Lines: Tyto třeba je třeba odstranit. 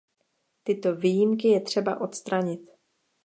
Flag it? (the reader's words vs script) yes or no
yes